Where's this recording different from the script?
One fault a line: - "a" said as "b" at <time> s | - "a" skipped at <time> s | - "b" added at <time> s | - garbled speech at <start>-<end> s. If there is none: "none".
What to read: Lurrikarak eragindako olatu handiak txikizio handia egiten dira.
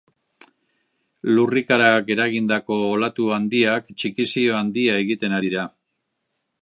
none